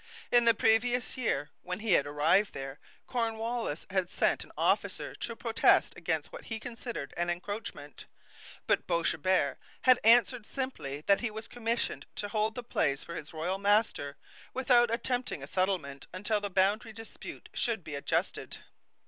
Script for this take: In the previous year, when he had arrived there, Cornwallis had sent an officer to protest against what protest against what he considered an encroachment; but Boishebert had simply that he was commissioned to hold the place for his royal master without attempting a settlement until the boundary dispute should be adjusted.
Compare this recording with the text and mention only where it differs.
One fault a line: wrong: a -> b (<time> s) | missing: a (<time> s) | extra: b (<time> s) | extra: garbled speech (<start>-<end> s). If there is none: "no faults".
missing: protest against what (6.5 s)
extra: answered (10.0 s)